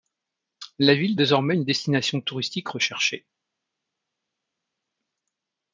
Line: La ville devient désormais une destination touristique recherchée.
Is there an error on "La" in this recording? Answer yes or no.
no